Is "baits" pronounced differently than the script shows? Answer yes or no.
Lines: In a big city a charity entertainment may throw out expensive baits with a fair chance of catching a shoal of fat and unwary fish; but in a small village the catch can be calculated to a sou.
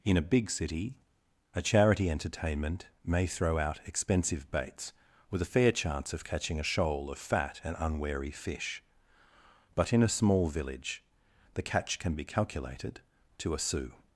no